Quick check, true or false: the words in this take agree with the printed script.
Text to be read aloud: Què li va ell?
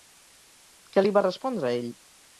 false